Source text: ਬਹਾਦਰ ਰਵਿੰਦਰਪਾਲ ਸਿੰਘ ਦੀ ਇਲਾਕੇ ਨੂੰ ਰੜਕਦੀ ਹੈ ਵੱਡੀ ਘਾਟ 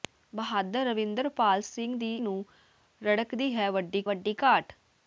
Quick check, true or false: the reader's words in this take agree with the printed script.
false